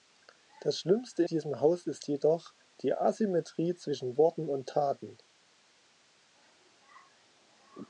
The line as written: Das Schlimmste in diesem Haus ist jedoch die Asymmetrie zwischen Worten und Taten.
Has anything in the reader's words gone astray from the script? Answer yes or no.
yes